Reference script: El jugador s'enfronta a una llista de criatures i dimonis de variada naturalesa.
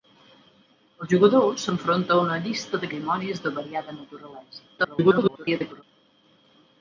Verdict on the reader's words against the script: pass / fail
fail